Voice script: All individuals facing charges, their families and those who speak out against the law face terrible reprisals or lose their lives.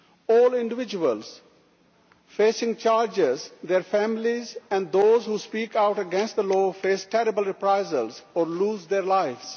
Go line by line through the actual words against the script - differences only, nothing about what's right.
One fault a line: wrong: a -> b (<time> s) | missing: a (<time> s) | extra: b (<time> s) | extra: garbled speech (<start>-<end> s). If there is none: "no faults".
no faults